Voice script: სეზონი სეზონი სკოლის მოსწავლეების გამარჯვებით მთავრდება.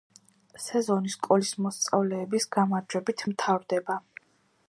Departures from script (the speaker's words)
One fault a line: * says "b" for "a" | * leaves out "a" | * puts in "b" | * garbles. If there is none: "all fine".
* leaves out "სეზონი"